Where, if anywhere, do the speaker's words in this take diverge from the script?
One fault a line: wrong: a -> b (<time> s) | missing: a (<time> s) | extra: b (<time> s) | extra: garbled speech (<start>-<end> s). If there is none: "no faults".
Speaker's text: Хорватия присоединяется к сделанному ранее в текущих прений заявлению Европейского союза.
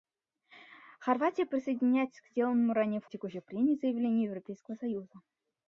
no faults